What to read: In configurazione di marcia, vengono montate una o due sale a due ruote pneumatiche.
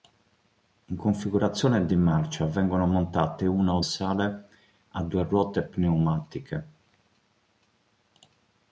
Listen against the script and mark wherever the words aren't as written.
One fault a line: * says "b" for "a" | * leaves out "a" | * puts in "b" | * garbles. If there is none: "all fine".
* leaves out "due"